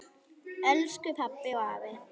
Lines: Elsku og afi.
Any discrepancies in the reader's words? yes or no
yes